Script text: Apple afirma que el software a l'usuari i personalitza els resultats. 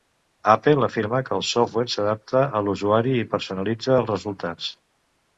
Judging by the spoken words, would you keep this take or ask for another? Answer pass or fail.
fail